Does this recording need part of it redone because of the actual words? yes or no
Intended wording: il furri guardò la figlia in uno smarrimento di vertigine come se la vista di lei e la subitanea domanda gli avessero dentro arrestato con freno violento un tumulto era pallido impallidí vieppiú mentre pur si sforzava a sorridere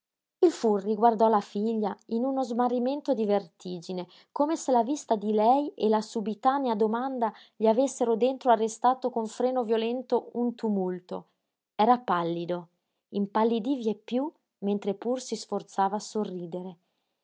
no